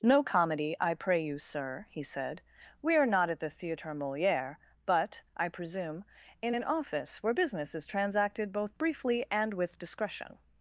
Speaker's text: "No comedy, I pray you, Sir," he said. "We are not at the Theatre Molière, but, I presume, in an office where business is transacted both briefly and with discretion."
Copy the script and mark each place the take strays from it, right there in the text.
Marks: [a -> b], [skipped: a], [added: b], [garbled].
"No comedy, I pray you, Sir," he said. "We are not at the Theatre Molière, but, I presume, in an office where business is transacted both briefly and with discretion."